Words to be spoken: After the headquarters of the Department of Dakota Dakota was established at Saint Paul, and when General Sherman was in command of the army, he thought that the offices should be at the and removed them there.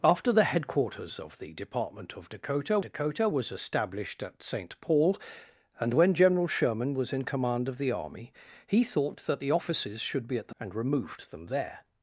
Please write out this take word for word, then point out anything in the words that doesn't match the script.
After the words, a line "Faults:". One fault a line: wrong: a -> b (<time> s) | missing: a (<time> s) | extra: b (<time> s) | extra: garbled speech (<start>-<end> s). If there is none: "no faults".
After the headquarters of the Department of Dakota Dakota was established at Saint Paul, and when General Sherman was in command of the army, he thought that the offices should be at the and removed them there.
Faults:
no faults